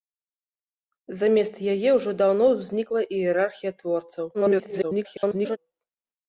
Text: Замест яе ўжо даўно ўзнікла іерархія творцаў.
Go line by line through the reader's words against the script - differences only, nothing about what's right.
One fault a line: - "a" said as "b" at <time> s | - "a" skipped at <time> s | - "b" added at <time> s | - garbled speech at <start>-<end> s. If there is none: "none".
- garbled speech at 4.3-5.6 s